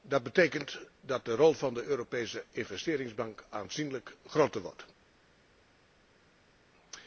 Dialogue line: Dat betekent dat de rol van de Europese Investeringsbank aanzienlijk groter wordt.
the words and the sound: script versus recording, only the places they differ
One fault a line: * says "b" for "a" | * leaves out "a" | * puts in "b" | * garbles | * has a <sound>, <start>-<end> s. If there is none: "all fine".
all fine